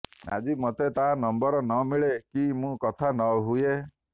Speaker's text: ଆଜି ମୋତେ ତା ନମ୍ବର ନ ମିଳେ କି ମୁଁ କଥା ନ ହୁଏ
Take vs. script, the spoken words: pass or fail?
pass